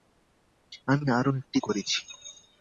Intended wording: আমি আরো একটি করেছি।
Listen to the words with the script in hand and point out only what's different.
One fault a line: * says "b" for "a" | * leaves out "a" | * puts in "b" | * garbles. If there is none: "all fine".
all fine